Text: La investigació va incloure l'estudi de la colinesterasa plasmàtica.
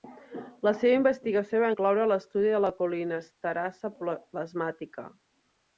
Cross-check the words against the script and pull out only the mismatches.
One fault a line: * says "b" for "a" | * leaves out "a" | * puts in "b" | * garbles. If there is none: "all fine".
* puts in "seva"